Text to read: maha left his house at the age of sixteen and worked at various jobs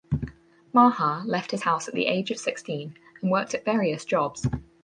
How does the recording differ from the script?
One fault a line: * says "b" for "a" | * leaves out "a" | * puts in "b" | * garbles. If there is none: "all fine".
all fine